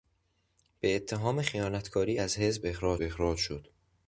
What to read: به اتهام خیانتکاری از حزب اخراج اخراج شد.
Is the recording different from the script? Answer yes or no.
no